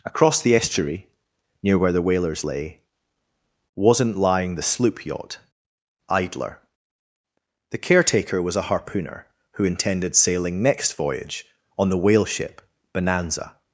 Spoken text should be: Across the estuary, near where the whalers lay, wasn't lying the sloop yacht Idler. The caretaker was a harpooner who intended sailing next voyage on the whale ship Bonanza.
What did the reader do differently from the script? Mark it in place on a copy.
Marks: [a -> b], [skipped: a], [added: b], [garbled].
Across the estuary, near where the whalers lay, wasn't lying the sloop yacht Idler. The caretaker was a harpooner who intended sailing next voyage on the whale ship Bonanza.